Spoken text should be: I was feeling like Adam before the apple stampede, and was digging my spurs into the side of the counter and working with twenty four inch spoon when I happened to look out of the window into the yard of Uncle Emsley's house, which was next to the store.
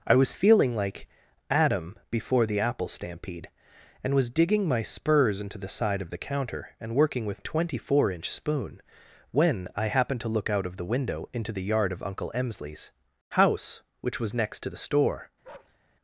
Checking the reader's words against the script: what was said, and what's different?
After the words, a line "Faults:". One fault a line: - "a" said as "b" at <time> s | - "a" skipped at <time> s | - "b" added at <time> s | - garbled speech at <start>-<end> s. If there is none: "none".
I was feeling like Adam before the apple stampede, and was digging my spurs into the side of the counter and working with twenty four inch spoon when I happened to look out of the window into the yard of Uncle Emsley's house, which was next to the store.
Faults:
none